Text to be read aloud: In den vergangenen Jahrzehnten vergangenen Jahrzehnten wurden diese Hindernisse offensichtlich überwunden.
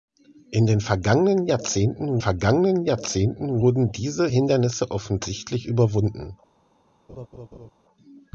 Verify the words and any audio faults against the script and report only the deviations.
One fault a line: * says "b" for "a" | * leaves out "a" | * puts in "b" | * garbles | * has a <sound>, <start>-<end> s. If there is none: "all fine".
* has a laugh, 7.1-7.7 s